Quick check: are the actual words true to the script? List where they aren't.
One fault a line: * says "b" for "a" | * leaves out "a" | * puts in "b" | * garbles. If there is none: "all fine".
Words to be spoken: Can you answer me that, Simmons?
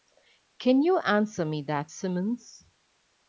all fine